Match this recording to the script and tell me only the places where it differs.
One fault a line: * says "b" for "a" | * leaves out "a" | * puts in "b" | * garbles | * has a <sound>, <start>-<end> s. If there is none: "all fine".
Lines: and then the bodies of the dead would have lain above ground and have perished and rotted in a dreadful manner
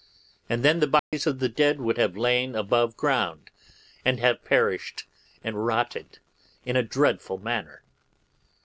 * has a dropout, 1.0-1.1 s